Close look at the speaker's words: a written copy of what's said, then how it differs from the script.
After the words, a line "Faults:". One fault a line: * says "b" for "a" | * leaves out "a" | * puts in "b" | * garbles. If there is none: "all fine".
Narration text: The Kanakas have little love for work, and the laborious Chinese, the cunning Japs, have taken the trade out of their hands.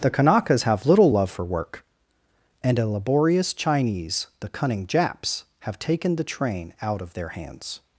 The Kanakas have little love for work, and a laborious Chinese, the cunning Japs, have taken the train out of their hands.
Faults:
* says "a" for "the"
* says "train" for "trade"